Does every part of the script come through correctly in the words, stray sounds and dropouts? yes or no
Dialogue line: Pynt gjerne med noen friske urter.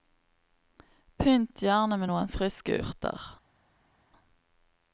yes